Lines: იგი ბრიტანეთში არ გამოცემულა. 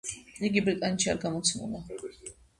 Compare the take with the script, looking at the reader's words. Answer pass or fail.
pass